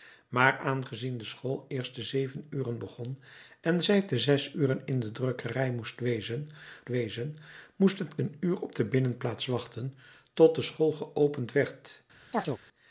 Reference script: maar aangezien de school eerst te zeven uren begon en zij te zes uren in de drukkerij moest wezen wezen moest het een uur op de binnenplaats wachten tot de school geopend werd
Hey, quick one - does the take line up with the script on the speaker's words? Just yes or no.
yes